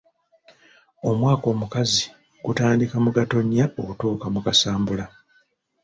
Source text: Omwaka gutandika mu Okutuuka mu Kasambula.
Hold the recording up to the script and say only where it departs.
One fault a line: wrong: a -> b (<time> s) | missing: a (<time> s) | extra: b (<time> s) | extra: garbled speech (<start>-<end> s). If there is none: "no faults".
extra: omukazi (1.5 s)
extra: Gatonnya (3.2 s)